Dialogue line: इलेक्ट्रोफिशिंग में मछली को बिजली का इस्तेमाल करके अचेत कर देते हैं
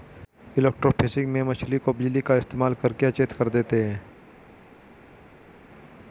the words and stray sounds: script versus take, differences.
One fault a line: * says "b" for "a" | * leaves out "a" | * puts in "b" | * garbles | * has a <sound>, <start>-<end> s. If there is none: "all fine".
all fine